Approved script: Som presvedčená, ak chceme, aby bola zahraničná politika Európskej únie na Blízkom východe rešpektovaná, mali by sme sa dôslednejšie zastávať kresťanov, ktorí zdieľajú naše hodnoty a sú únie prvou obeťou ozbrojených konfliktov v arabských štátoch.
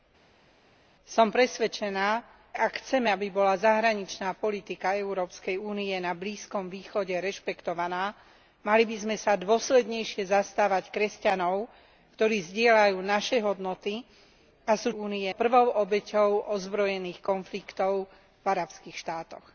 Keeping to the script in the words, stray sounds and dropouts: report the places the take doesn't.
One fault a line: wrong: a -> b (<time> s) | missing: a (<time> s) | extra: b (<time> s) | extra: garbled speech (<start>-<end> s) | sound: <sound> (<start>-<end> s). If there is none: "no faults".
no faults